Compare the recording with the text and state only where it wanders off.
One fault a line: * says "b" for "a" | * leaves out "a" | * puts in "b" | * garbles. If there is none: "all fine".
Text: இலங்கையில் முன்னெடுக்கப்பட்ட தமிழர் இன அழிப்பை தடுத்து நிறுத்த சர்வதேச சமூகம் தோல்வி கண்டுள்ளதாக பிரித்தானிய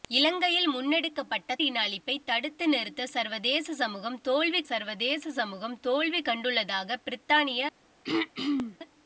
* leaves out "தமிழர்"
* puts in "சர்வதேச சமூகம் தோல்வி"